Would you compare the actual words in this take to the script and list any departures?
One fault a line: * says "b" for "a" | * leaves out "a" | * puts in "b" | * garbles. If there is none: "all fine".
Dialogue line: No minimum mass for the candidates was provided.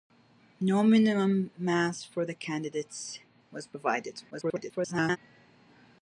* garbles